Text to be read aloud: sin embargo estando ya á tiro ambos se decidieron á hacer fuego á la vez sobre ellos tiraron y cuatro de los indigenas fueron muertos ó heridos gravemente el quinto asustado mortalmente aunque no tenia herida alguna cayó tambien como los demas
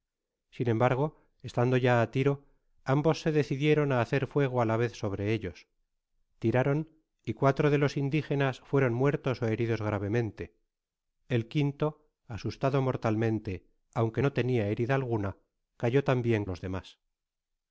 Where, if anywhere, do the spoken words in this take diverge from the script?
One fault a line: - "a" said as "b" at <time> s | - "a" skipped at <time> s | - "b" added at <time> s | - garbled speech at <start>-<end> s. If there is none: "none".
- "como" skipped at 16.4 s